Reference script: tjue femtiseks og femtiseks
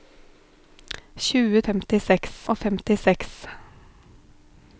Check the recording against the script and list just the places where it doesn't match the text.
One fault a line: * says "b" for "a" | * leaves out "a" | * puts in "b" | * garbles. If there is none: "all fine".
all fine